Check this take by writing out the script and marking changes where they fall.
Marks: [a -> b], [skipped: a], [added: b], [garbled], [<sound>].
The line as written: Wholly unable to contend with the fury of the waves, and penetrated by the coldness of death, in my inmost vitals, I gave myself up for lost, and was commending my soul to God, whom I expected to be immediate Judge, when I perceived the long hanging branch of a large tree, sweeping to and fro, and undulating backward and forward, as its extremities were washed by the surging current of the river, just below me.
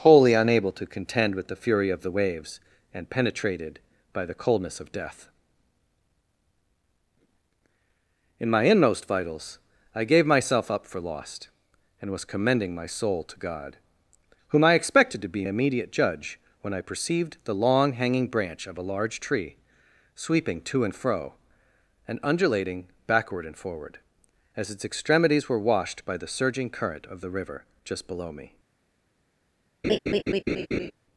Wholly unable to contend with the fury of the waves, and penetrated by the coldness of death, in my inmost vitals, I gave myself up for lost, and was commending my soul to God, whom I expected to be immediate Judge, when I perceived the long hanging branch of a large tree, sweeping to and fro, and undulating backward and forward, as its extremities were washed by the surging current of the river, just below me. [laugh]